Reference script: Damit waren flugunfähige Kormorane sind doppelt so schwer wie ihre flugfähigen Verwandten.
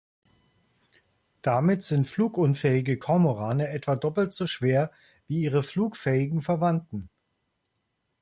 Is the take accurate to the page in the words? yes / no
no